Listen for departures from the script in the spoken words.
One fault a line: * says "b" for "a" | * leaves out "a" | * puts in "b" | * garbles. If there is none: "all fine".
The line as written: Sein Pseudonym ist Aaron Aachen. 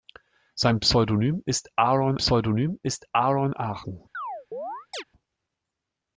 * puts in "Pseudonym ist Aaron"